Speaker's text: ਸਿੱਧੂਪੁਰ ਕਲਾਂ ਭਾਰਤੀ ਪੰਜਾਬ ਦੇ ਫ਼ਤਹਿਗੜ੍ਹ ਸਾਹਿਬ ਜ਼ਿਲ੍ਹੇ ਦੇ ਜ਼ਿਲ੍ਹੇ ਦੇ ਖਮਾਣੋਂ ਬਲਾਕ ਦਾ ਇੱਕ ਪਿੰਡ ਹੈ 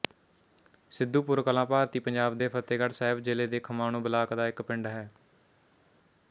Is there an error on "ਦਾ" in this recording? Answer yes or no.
no